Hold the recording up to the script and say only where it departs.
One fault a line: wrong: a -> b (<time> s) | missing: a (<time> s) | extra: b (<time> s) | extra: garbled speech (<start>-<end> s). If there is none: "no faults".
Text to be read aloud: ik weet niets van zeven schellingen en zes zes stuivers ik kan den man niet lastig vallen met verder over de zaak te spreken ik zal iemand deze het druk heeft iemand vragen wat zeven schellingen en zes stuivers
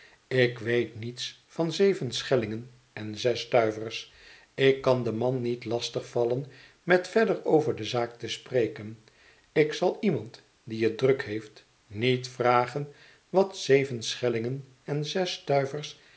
missing: zes (3.4 s)
wrong: deze -> die (10.6 s)
wrong: iemand -> niet (11.9 s)